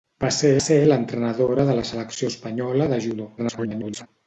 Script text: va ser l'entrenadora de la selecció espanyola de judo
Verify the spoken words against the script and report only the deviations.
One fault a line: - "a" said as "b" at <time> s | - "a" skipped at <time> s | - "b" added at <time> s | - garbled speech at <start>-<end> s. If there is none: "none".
- "ser" added at 0.6 s
- garbled speech at 3.4-4.1 s